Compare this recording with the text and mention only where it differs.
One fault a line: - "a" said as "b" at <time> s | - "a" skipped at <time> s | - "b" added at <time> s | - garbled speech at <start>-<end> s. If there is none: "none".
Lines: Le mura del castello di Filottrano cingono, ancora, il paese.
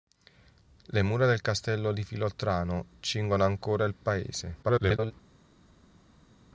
- garbled speech at 4.6-5.1 s